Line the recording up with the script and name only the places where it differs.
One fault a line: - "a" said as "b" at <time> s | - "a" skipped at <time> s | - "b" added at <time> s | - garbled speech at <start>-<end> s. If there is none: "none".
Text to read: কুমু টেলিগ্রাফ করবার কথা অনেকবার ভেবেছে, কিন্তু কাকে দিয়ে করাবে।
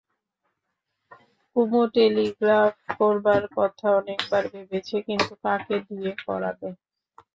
none